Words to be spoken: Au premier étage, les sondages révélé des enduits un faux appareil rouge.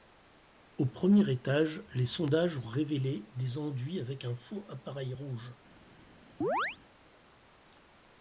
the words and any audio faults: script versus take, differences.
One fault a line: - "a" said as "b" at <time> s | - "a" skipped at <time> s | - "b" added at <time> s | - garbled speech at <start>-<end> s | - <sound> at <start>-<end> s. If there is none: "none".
- "ont" added at 2.6 s
- "avec" added at 4.0 s
- chirp at 6.4-6.8 s